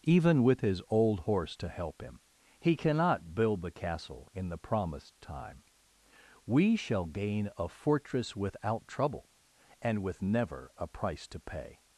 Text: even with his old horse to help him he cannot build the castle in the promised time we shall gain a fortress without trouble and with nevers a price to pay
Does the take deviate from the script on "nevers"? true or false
true